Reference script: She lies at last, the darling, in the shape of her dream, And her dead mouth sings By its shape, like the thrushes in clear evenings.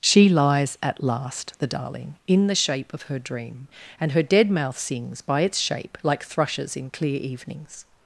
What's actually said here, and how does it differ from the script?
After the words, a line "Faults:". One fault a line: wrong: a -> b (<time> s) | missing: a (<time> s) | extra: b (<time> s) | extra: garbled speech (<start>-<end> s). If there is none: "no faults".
She lies at last, the darling, in the shape of her dream, And her dead mouth sings By its shape, like thrushes in clear evenings.
Faults:
missing: the (6.2 s)